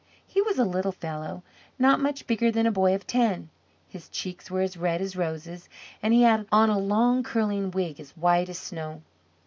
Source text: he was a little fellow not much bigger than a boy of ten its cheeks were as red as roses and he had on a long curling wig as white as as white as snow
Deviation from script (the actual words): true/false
true